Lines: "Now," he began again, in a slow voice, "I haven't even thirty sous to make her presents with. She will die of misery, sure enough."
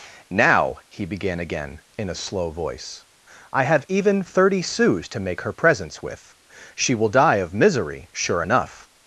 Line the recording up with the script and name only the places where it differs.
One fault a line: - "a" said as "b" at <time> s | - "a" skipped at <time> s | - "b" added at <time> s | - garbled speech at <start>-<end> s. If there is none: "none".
- "haven't" said as "have" at 3.6 s